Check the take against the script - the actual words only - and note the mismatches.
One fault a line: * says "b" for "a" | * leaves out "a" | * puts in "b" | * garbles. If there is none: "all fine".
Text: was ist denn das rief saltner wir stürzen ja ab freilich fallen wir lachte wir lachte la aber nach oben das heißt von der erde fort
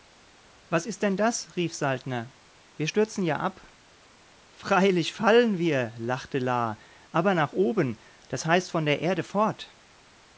* leaves out "wir lachte"